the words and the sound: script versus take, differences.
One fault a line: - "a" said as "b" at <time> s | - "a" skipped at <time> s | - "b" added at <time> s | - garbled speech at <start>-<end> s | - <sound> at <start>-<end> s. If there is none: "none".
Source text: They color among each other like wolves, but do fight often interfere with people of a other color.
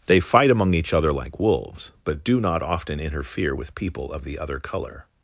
- "color" said as "fight" at 0.2 s
- "fight" said as "not" at 2.4 s
- "a" said as "the" at 4.2 s